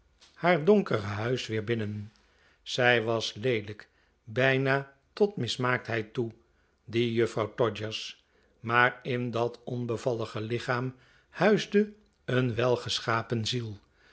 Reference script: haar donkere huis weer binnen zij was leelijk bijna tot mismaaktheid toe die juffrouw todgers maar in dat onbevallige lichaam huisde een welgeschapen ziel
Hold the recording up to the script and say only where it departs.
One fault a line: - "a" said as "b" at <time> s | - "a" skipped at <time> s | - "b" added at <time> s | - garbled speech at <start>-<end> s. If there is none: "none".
none